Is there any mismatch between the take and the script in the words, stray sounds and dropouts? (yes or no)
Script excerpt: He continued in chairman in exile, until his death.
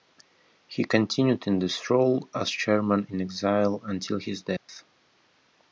yes